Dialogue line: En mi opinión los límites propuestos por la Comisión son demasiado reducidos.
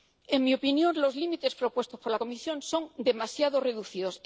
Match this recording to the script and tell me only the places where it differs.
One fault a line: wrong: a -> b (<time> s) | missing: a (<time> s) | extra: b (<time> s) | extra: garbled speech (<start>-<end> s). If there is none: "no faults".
no faults